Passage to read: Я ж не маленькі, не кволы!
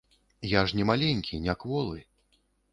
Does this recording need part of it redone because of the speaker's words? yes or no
no